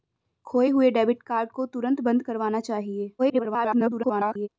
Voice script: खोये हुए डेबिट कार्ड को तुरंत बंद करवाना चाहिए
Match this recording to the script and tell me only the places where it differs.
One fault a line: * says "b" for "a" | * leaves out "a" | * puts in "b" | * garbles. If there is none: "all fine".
* garbles